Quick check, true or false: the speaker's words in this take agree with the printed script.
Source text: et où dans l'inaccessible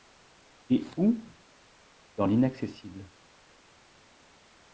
true